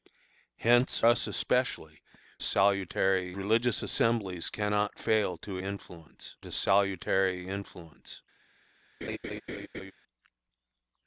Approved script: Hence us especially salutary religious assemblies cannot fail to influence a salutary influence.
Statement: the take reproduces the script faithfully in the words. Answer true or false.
true